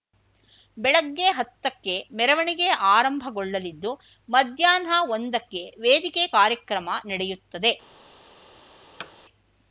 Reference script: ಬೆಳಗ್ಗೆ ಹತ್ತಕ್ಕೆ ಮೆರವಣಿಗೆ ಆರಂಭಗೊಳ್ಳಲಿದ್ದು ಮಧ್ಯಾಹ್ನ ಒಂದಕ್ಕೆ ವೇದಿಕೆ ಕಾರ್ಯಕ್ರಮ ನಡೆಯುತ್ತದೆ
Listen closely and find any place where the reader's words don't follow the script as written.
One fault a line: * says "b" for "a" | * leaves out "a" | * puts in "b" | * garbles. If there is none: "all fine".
all fine